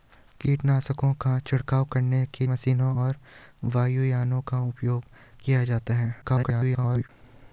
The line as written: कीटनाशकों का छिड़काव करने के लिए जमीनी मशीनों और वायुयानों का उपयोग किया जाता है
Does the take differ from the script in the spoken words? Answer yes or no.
yes